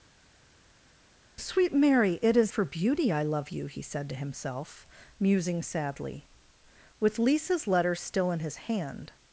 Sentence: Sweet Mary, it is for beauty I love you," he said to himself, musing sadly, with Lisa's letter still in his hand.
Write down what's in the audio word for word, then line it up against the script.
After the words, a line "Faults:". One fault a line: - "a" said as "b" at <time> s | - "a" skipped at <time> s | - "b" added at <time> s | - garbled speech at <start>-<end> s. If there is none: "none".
Sweet Mary, it is for beauty I love you," he said to himself, musing sadly, with Lisa's letter still in his hand.
Faults:
none